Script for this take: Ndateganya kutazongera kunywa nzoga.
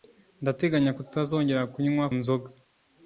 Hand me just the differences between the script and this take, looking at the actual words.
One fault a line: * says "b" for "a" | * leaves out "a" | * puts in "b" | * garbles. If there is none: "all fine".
all fine